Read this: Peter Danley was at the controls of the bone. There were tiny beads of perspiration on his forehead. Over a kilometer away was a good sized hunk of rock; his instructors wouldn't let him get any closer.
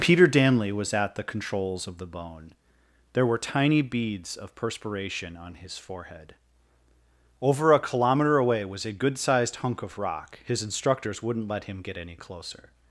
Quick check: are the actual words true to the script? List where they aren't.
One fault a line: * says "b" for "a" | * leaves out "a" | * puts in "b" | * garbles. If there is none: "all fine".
all fine